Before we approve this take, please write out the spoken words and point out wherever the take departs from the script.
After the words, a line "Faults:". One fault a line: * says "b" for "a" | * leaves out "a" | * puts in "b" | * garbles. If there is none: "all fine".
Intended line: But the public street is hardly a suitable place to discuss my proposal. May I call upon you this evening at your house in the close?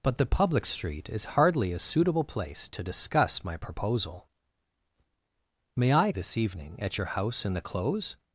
But the public street is hardly a suitable place to discuss my proposal. May I this evening at your house in the close?
Faults:
* leaves out "call upon you"